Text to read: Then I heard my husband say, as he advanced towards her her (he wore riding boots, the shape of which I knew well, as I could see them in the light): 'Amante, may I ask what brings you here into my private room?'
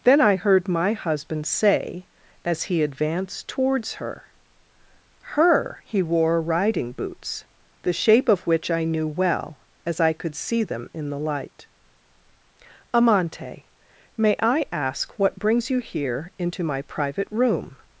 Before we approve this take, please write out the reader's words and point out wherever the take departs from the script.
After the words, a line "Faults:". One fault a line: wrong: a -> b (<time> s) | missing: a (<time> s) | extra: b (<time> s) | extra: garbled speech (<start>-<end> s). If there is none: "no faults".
Then I heard my husband say, as he advanced towards her her (he wore riding boots, the shape of which I knew well, as I could see them in the light): 'Amante, may I ask what brings you here into my private room?'
Faults:
no faults